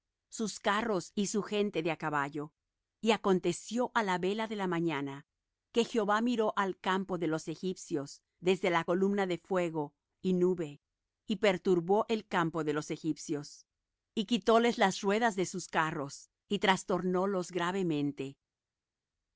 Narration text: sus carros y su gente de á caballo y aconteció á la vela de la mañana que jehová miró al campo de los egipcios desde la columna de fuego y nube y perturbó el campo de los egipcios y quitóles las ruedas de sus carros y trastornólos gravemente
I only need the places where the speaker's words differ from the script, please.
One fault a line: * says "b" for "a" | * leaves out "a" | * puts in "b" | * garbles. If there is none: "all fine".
all fine